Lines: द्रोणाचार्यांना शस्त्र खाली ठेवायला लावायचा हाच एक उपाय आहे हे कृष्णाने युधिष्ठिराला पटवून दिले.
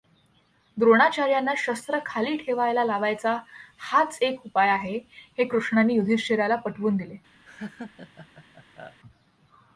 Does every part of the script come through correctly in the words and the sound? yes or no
no